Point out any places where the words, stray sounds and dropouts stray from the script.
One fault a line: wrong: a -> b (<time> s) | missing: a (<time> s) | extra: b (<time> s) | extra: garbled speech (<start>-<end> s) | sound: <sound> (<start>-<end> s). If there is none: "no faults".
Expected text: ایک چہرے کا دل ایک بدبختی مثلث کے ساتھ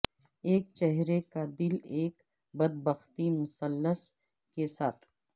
no faults